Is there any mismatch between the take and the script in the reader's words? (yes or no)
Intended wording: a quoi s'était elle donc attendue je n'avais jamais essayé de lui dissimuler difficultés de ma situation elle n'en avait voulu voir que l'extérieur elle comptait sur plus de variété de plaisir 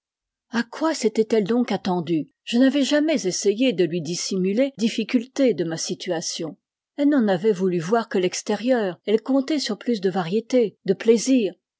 no